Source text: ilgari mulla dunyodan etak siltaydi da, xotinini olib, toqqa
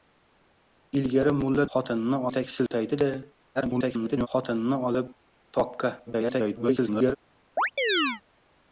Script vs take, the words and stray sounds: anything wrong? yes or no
yes